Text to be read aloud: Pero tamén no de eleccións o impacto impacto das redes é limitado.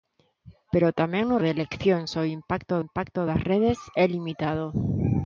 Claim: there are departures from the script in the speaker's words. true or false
false